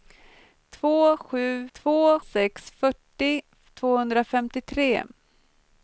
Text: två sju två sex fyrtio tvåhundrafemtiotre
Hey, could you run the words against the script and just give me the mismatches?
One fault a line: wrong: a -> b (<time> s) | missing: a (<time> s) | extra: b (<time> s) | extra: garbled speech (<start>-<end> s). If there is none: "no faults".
no faults